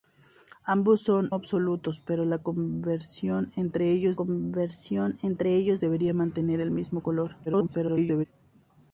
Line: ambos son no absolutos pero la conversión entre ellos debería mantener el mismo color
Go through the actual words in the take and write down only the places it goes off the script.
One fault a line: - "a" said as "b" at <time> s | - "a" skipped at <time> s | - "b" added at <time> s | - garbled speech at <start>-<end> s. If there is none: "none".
- "no" skipped at 1.3 s
- "conversión entre ellos" added at 4.1 s
- garbled speech at 7.5-8.3 s